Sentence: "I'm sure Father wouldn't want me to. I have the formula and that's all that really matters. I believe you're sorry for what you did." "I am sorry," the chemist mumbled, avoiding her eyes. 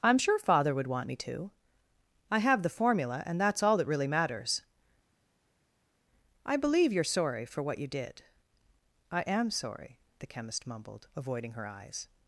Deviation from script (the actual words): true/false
true